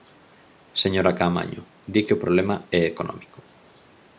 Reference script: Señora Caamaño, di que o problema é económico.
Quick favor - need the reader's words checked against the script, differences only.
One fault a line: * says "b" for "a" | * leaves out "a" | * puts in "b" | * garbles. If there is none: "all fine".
all fine